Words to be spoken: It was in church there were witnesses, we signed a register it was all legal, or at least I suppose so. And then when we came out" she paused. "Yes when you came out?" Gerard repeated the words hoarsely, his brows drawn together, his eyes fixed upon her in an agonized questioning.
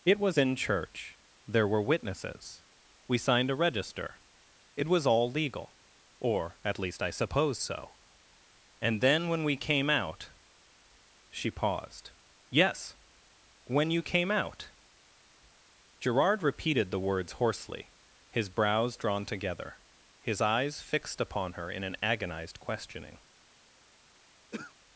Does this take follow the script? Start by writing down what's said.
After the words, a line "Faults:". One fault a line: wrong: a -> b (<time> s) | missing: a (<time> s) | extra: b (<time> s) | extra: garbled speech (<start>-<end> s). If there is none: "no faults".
It was in church there were witnesses, we signed a register it was all legal, or at least I suppose so. And then when we came out" she paused. "Yes when you came out?" Gerard repeated the words hoarsely, his brows drawn together, his eyes fixed upon her in an agonized questioning.
Faults:
no faults